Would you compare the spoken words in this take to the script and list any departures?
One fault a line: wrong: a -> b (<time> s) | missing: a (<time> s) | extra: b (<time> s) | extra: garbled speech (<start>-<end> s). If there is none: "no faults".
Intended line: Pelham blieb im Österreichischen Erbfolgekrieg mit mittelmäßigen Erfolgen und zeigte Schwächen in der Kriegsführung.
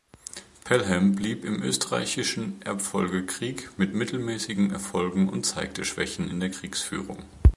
no faults